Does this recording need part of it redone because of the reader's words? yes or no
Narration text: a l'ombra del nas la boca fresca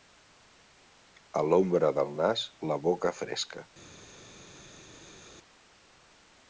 no